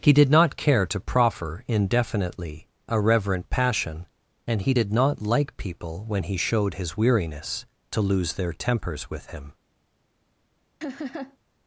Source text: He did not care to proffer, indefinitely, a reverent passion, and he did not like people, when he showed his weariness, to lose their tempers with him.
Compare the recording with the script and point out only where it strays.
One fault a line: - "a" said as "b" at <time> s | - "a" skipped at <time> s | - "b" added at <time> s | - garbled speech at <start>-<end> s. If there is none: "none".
none